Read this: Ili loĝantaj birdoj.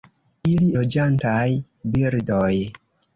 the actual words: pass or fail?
pass